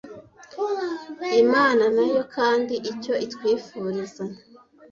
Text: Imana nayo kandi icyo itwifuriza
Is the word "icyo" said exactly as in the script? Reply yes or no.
yes